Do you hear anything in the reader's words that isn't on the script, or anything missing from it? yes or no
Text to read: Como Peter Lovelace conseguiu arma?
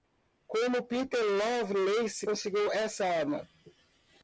yes